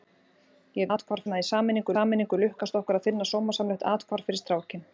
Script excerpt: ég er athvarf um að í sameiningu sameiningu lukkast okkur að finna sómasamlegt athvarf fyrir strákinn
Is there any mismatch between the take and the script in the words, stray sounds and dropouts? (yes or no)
no